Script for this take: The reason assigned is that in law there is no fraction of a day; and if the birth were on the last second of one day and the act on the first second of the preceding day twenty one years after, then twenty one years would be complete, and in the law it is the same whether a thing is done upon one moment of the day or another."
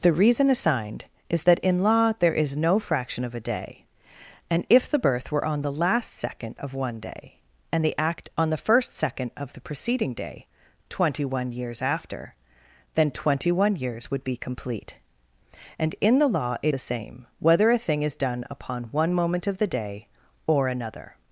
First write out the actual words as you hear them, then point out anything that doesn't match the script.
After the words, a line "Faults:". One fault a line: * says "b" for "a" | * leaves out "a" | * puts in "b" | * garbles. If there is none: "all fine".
The reason assigned is that in law there is no fraction of a day; and if the birth were on the last second of one day and the act on the first second of the preceding day twenty one years after, then twenty one years would be complete, and in the law it the same whether a thing is done upon one moment of the day or another."
Faults:
* leaves out "is"